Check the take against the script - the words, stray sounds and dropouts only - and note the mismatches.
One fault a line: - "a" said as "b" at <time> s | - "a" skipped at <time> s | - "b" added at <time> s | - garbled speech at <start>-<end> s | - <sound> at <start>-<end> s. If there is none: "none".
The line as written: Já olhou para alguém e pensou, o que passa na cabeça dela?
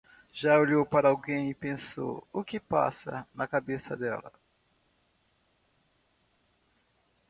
none